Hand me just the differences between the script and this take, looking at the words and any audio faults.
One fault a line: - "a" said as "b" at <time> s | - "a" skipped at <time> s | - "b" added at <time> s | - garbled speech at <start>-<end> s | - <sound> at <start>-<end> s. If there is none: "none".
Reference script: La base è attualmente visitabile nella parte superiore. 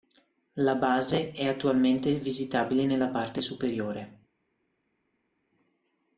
none